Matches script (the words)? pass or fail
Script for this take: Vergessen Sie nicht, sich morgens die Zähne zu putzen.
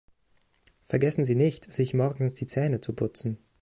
pass